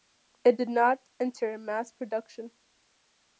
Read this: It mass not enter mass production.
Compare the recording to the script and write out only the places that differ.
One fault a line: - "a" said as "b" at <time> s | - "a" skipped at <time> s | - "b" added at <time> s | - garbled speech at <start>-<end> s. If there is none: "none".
- "mass" said as "did" at 0.5 s